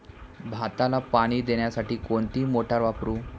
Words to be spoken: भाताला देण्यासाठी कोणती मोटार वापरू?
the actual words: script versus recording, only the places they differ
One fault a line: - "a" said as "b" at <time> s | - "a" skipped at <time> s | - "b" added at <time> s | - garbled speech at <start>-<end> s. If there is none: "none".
- "पाणी" added at 1.1 s